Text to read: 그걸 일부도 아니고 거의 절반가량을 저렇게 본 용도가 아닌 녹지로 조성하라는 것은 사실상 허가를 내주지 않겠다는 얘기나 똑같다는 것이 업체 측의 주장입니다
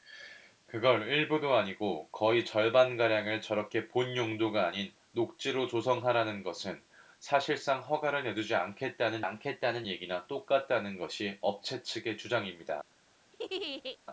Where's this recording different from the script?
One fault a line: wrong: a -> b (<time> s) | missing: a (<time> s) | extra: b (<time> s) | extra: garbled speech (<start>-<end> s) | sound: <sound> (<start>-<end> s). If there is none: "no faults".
extra: 않겠다는 (9.2 s)
sound: laugh (13.3-14.0 s)